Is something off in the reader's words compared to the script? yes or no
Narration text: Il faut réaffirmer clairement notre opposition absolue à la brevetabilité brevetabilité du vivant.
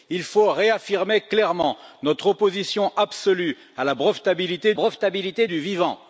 no